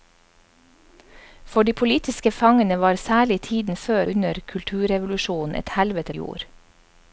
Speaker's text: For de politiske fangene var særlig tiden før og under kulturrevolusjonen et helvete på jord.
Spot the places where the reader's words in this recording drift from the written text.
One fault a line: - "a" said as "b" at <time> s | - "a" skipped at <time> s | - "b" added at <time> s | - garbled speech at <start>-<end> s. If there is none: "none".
- "og" skipped at 4.0 s
- "på" skipped at 6.1 s